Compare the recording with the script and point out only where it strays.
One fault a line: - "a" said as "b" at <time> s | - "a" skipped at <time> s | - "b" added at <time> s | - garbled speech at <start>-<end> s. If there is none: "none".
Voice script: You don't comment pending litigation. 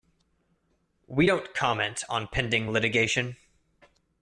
- "You" said as "We" at 1.1 s
- "on" added at 2.1 s